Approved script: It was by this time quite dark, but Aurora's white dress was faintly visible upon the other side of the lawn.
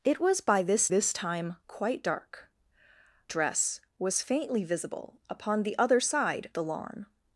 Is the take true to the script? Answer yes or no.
no